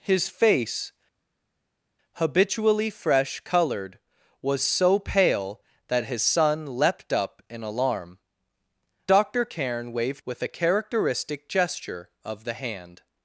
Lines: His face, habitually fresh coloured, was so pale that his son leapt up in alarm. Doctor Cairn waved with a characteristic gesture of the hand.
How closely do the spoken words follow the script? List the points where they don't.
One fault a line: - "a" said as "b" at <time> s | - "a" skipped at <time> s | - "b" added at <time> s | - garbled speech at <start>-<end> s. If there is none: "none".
none